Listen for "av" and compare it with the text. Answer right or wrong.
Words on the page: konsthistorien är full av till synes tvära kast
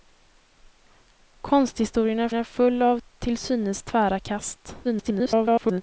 right